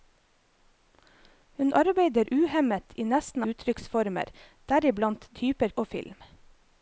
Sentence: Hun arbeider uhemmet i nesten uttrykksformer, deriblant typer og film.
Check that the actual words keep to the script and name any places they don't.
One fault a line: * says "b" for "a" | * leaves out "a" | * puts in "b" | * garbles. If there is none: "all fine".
all fine